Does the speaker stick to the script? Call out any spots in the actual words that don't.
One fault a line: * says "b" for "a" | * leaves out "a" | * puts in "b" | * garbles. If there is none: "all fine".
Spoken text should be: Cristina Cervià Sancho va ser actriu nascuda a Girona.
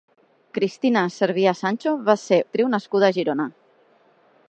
all fine